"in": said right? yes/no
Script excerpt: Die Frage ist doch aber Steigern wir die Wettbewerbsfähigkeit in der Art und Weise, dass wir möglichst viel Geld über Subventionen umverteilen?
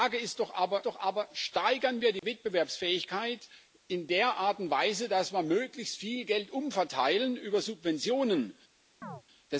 yes